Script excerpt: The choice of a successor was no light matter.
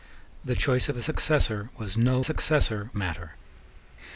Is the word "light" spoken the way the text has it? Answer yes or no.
no